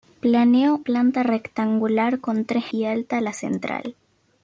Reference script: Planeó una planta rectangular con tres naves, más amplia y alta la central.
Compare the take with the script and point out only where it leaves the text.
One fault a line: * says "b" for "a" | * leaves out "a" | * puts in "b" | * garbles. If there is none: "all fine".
* leaves out "una"
* leaves out "naves más amplia"